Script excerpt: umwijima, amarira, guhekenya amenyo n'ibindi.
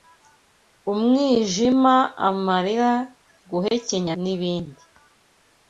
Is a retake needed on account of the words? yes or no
yes